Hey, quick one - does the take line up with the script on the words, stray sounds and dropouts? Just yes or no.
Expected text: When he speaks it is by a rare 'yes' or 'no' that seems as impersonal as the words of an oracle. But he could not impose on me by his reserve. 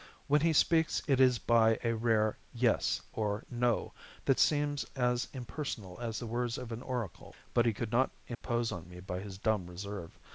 no